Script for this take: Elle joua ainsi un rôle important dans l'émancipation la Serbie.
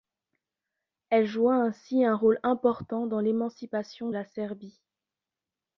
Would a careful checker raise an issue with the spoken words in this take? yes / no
no